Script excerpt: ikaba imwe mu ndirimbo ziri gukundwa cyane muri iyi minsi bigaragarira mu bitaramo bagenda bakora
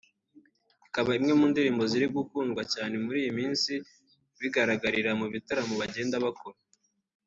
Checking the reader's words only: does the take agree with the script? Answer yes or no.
yes